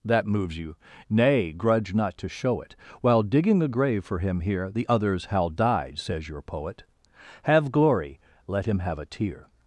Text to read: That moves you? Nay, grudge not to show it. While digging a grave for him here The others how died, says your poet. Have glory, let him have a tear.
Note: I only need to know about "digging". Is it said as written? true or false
true